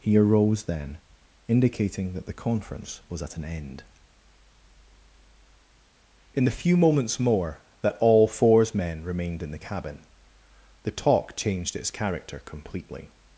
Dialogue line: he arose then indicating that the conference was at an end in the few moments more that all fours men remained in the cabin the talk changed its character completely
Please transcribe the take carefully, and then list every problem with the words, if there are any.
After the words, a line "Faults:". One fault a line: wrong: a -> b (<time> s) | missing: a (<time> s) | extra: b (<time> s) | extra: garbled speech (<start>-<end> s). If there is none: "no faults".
he arose then indicating that the conference was at an end in the few moments more that all fours men remained in the cabin the talk changed its character completely
Faults:
no faults